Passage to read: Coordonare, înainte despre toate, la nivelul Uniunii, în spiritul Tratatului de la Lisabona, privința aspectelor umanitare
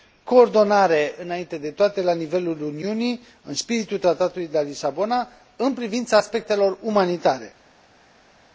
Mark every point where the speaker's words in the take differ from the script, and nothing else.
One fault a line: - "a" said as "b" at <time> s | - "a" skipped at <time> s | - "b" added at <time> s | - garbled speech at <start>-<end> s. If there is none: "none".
- "despre" said as "de" at 1.6 s
- "în" added at 5.5 s